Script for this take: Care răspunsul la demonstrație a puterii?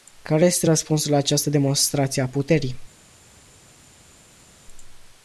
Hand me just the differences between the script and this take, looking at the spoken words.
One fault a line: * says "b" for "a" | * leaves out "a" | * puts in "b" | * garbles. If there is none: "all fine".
* puts in "este"
* puts in "această"